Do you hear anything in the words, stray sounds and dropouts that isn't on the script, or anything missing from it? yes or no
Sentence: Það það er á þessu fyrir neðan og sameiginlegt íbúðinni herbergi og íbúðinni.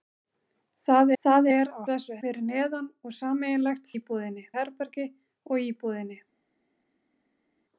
no